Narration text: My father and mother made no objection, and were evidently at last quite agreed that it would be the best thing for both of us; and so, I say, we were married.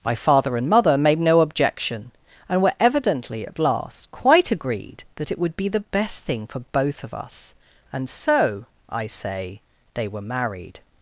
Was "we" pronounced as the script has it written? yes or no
no